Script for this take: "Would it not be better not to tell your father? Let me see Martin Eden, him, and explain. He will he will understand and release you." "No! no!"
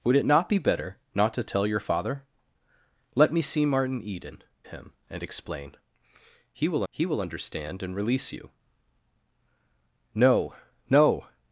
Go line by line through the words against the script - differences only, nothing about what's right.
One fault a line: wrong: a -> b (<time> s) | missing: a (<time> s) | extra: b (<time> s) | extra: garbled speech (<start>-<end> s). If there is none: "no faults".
no faults